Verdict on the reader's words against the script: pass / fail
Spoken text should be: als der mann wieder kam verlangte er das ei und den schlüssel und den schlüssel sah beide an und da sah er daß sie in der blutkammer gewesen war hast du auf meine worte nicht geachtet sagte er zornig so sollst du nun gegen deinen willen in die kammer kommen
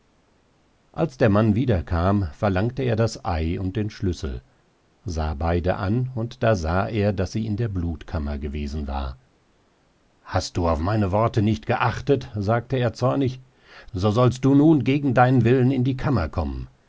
fail